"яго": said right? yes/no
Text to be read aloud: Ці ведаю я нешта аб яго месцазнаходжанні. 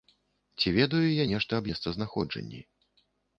no